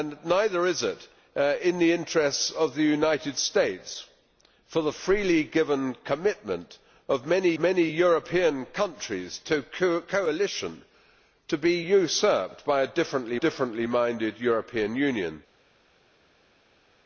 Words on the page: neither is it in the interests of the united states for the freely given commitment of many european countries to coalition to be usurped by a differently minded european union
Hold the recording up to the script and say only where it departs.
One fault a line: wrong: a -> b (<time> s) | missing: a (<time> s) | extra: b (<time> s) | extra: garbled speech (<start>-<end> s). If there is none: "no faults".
extra: many (7.6 s)
extra: differently (13.4 s)